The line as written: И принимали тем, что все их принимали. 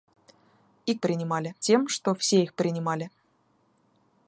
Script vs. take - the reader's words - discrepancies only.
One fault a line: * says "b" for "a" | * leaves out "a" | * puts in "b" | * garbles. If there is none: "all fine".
all fine